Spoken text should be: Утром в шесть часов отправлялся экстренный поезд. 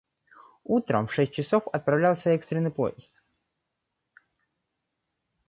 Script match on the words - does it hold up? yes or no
yes